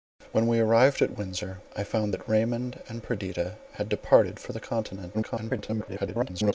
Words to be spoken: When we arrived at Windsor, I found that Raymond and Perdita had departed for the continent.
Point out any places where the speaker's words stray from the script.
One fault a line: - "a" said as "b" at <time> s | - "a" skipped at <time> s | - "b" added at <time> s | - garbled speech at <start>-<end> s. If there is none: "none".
- garbled speech at 5.1-6.5 s